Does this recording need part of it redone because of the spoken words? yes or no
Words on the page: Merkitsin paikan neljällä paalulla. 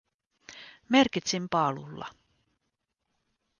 yes